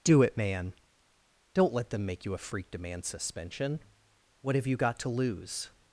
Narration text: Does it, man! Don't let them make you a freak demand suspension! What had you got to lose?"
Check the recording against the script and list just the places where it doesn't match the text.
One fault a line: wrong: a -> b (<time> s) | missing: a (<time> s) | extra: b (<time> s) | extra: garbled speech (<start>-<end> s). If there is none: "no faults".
wrong: Does -> Do (0.0 s)
wrong: had -> have (4.5 s)